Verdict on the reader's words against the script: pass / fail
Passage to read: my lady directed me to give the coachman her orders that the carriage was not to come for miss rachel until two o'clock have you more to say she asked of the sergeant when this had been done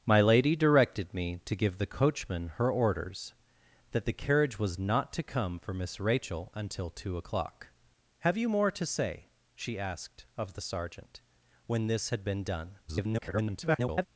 fail